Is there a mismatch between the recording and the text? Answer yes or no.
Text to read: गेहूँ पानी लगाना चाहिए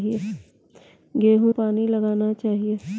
no